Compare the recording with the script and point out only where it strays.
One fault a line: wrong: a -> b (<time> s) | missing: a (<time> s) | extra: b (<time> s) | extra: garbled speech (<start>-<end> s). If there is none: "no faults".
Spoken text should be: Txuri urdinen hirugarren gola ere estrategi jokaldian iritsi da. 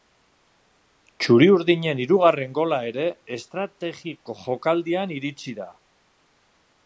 no faults